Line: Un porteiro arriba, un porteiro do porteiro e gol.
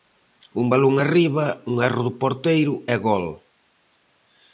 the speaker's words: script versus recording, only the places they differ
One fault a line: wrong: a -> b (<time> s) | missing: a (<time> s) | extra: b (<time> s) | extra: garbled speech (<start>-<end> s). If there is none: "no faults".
wrong: porteiro -> balón (0.7 s)
wrong: porteiro -> erro (1.9 s)